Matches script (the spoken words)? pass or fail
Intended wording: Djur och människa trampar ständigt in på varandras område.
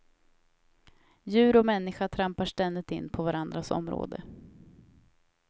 pass